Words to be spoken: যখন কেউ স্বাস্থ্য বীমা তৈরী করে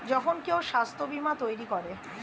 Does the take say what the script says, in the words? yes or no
yes